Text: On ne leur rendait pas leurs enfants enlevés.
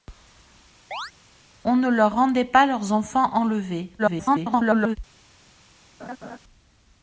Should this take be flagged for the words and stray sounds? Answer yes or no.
yes